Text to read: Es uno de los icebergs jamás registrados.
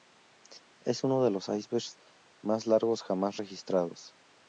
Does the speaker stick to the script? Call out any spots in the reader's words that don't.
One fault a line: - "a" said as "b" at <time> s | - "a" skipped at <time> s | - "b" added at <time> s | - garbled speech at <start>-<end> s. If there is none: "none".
- "más largos" added at 2.4 s